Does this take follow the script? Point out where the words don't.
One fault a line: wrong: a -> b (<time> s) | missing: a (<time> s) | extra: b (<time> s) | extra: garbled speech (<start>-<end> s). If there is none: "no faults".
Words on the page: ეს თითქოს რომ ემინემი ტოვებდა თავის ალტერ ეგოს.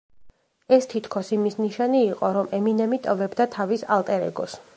extra: იმის ნიშანი იყო (1.4 s)